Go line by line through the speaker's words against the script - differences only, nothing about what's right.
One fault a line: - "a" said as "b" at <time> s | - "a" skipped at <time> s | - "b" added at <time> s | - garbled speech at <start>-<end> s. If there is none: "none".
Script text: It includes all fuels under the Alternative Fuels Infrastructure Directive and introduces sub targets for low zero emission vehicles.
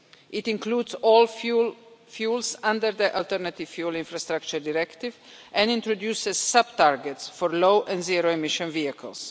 - "and" added at 7.9 s